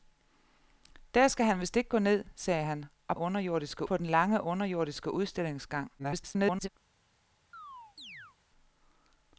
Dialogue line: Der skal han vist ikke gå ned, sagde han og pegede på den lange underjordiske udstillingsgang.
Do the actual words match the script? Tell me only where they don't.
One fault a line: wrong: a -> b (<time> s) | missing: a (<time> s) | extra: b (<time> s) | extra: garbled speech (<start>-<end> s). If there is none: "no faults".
wrong: pegede -> underjordiske (3.2 s)
extra: garbled speech (6.0-6.7 s)